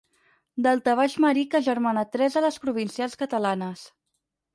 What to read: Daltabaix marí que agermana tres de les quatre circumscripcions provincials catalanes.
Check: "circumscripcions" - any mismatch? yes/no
yes